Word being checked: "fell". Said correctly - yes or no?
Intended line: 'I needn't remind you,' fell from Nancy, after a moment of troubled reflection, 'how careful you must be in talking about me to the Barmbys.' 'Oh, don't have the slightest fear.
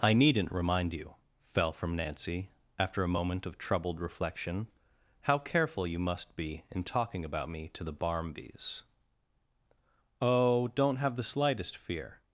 yes